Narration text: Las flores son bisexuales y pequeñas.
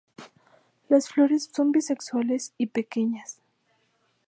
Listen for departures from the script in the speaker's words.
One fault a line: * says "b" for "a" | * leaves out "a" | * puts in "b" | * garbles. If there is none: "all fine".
all fine